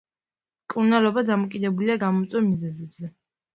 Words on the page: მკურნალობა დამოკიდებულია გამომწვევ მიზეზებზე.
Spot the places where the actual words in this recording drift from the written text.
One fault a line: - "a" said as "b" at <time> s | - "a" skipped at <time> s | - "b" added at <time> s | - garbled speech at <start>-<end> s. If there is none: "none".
none